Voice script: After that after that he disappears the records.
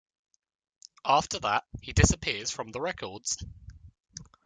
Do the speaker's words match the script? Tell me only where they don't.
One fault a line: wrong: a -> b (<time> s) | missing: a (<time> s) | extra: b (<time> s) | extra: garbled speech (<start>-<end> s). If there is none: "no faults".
missing: after that (1.6 s)
extra: from (2.5 s)